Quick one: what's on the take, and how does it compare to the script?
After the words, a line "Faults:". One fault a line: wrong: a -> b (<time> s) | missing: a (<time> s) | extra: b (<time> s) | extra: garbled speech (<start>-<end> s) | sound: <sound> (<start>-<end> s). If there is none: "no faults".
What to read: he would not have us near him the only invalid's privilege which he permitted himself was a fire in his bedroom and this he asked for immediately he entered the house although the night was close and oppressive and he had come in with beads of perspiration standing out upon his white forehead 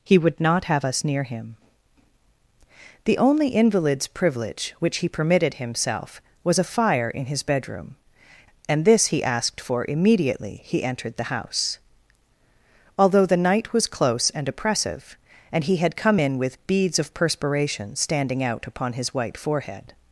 he would not have us near him the only invalid's privilege which he permitted himself was a fire in his bedroom and this he asked for immediately he entered the house although the night was close and oppressive and he had come in with beads of perspiration standing out upon his white forehead
Faults:
no faults